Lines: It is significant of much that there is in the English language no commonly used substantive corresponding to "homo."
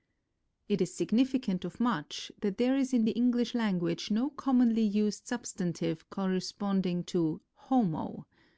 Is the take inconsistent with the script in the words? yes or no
no